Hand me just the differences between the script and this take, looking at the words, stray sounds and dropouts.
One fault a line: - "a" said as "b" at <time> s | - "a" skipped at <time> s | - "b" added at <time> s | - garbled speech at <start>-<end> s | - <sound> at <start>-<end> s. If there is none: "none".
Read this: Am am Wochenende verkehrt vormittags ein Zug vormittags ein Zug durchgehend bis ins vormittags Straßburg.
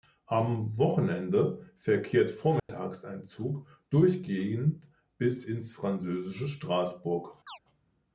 - "am" skipped at 0.8 s
- dropout at 2.6-2.7 s
- "vormittags ein Zug" skipped at 3.7 s
- "vormittags" said as "französische" at 5.7 s
- chirp at 7.5-7.6 s